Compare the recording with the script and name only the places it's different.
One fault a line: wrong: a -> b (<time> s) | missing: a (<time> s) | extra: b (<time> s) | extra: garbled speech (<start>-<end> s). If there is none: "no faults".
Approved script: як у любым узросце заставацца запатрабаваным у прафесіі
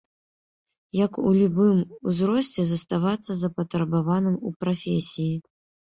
no faults